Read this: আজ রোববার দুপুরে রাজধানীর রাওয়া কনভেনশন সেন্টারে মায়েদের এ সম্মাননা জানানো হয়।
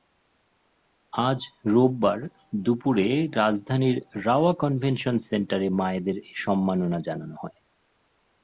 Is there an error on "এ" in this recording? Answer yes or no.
no